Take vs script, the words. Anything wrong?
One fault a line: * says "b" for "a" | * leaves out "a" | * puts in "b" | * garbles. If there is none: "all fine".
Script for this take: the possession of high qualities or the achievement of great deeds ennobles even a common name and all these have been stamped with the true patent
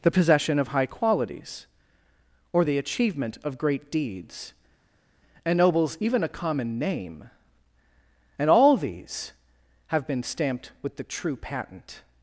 all fine